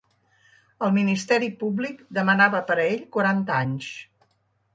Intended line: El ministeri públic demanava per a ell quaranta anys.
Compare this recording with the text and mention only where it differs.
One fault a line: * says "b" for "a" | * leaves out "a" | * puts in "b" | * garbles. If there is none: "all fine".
all fine